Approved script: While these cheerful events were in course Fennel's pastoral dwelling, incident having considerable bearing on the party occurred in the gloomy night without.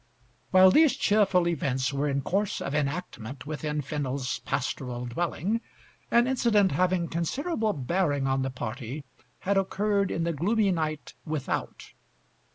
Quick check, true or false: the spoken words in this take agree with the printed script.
false